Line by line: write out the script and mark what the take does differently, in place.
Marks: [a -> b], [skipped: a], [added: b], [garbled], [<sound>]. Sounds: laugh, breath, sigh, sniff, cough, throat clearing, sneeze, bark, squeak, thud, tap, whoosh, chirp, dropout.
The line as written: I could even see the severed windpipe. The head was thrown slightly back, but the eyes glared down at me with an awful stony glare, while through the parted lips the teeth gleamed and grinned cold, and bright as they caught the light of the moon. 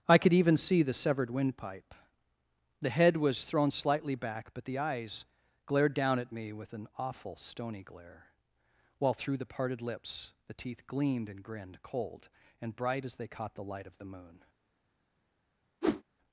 I could even see the severed windpipe. The head was thrown slightly back, but the eyes glared down at me with an awful stony glare, while through the parted lips the teeth gleamed and grinned cold, and bright as they caught the light of the moon. [whoosh]